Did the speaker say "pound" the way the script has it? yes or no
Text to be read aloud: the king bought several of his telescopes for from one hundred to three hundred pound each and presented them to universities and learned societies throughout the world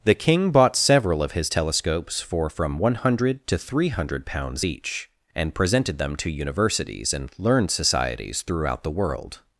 no